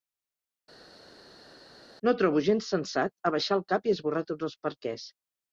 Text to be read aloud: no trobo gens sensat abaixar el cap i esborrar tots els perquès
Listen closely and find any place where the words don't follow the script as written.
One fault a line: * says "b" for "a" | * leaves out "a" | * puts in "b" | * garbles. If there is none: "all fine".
all fine